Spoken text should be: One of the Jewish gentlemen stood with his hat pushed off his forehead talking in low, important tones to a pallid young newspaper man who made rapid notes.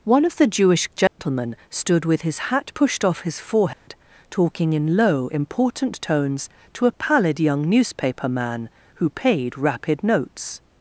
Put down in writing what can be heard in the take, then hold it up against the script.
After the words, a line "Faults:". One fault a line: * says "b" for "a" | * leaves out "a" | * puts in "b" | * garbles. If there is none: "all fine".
One of the Jewish gentlemen stood with his hat pushed off his forehead talking in low, important tones to a pallid young newspaper man who paid rapid notes.
Faults:
* says "paid" for "made"